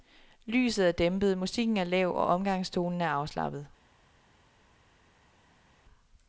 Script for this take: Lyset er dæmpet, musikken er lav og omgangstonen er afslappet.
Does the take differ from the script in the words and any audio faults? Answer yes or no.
no